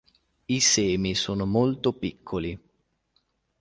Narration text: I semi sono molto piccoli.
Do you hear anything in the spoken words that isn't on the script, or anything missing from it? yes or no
no